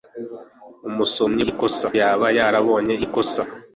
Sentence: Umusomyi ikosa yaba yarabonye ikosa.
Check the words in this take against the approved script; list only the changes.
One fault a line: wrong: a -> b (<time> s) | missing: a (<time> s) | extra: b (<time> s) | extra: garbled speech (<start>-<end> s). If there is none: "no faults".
no faults